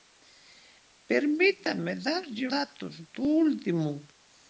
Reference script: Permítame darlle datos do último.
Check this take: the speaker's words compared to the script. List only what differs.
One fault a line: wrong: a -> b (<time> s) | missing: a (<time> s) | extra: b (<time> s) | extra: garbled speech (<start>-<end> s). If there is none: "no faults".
no faults